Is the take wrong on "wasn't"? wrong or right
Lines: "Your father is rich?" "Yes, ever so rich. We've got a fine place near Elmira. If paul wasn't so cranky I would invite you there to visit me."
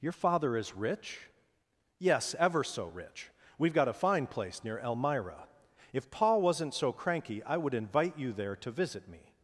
right